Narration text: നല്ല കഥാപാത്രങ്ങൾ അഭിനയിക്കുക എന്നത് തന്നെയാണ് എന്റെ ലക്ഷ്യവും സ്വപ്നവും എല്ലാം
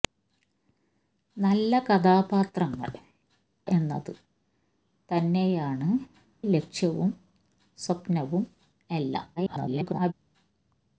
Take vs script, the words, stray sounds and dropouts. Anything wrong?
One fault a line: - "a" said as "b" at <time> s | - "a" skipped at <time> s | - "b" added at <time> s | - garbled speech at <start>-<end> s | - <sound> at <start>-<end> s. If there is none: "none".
- "അഭിനയിക്കുക" skipped at 2.9 s
- "എന്റെ" skipped at 5.9 s
- garbled speech at 9.4-10.1 s